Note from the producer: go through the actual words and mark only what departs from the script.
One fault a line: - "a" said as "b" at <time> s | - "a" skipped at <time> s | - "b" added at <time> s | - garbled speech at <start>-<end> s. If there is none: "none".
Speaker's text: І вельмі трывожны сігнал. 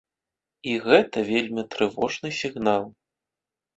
- "гэта" added at 0.8 s